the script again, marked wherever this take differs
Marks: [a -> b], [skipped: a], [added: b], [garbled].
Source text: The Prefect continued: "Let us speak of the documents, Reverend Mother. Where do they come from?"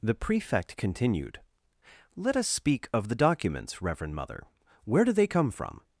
The Prefect continued: "Let us speak of the documents, Reverend Mother. Where do they come from?"